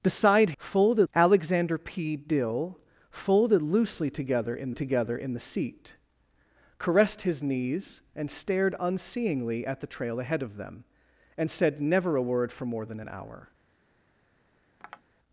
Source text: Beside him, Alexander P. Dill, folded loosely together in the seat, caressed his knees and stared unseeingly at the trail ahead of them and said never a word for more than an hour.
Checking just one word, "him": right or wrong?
wrong